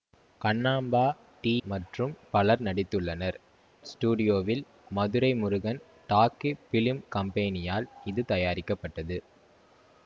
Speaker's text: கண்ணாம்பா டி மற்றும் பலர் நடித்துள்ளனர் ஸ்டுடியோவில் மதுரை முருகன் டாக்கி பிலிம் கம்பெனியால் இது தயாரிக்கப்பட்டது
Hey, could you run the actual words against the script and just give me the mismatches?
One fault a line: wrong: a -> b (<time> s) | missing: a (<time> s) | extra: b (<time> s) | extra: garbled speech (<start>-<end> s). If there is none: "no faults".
no faults